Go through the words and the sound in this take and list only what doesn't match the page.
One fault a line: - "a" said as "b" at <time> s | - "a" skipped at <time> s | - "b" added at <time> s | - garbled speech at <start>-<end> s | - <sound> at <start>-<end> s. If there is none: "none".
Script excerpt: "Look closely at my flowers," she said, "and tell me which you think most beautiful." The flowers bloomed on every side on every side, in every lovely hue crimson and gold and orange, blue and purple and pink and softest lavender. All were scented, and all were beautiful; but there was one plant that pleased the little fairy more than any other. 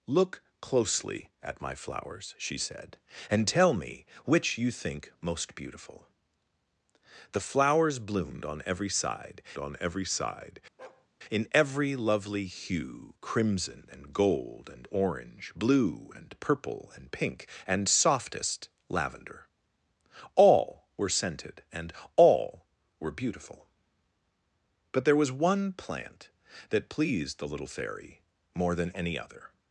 - bark at 10.8-11.1 s